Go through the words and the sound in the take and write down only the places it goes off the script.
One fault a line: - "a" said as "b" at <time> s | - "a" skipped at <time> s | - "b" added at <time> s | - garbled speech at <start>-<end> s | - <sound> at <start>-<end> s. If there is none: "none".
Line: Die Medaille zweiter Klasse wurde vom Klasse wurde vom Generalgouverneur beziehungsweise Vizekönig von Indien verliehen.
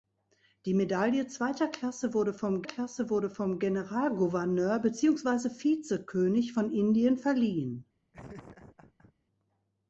- laugh at 8.1-9.1 s